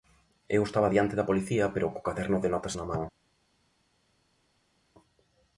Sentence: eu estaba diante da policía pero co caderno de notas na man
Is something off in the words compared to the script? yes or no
no